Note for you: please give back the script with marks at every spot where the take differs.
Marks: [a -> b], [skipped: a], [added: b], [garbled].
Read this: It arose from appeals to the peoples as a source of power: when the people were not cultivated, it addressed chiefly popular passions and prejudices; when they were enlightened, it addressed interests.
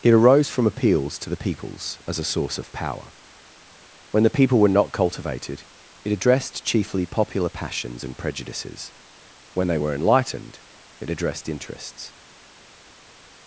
It arose from appeals to the peoples as a source of power: when the people were not cultivated, it addressed chiefly popular passions and prejudices; when they were enlightened, it addressed interests.